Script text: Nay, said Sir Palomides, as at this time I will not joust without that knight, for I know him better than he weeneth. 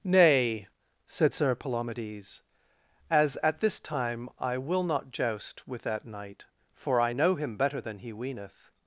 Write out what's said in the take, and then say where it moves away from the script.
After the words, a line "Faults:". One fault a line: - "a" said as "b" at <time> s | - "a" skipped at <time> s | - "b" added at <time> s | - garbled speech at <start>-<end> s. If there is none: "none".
Nay, said Sir Palomides, as at this time I will not joust with that knight, for I know him better than he weeneth.
Faults:
- "without" said as "with" at 5.7 s